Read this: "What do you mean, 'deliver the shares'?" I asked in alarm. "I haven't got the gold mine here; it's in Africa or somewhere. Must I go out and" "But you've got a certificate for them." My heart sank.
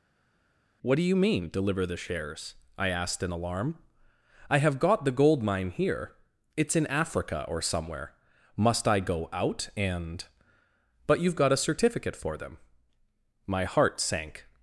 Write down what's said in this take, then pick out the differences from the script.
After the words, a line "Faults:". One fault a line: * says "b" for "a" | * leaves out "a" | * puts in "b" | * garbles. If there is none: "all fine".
"What do you mean, 'deliver the shares'?" I asked in alarm. "I have got the gold mine here; it's in Africa or somewhere. Must I go out and" "But you've got a certificate for them." My heart sank.
Faults:
* says "have" for "haven't"